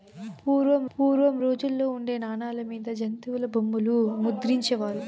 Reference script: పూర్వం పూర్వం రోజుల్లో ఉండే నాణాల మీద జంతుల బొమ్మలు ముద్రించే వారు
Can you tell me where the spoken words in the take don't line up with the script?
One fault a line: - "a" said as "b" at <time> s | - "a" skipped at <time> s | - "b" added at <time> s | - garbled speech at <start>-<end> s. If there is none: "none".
none